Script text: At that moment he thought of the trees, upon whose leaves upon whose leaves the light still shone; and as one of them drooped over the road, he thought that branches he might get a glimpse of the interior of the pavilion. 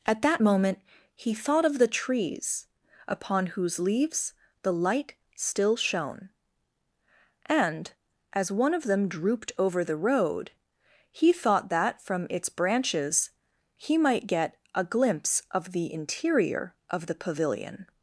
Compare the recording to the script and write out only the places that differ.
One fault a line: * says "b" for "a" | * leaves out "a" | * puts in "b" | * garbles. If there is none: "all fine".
* leaves out "upon whose leaves"
* puts in "from its"